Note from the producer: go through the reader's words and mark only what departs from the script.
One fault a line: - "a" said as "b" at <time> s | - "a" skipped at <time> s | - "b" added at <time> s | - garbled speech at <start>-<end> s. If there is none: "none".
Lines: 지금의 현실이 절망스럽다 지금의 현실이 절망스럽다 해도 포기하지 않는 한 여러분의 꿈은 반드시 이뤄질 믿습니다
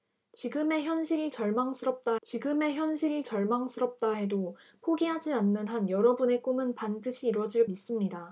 none